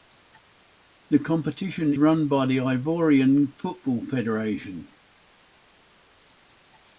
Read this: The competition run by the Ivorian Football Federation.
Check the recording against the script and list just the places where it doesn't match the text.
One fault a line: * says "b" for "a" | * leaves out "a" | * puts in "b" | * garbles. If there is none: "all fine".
all fine